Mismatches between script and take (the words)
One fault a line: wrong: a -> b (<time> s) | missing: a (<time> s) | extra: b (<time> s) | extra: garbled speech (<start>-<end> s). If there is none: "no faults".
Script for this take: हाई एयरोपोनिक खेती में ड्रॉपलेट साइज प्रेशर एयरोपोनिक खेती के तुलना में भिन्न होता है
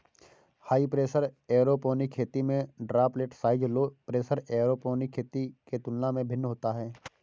extra: प्रेशर (0.9 s)
extra: लो (3.7 s)